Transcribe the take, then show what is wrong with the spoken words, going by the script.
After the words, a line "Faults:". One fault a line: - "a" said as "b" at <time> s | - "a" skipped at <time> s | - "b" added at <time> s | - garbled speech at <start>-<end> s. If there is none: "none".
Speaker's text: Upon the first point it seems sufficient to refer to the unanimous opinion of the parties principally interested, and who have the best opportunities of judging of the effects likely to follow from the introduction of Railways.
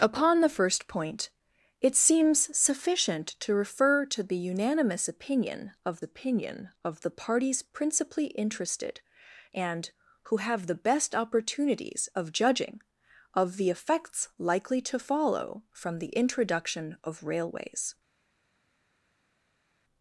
Upon the first point it seems sufficient to refer to the unanimous opinion of opinion of the parties principally interested, and who have the best opportunities of judging of the effects likely to follow from the introduction of Railways.
Faults:
- "opinion of" added at 6.0 s